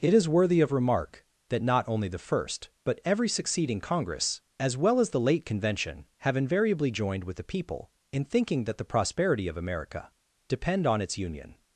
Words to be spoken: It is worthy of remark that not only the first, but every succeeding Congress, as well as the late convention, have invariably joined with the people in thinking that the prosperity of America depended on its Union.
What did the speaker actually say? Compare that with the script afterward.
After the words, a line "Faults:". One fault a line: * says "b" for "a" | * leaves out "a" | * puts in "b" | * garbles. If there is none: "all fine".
It is worthy of remark that not only the first, but every succeeding Congress, as well as the late convention, have invariably joined with the people in thinking that the prosperity of America depend on its Union.
Faults:
* says "depend" for "depended"